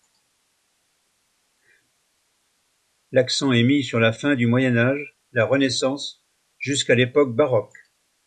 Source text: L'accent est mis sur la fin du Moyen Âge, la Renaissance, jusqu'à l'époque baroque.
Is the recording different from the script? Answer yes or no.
no